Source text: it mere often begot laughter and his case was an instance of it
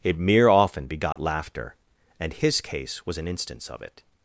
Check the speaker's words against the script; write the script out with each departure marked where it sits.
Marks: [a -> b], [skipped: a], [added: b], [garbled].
it mere often begot laughter and his case was an instance of it